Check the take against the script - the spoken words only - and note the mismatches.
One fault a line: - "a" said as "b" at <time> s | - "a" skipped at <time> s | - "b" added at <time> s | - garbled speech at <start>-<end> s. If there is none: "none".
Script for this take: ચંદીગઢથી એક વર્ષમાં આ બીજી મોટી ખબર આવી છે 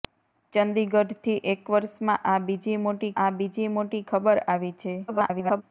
- "આ બીજી મોટી" added at 3.2 s
- garbled speech at 5.1-5.6 s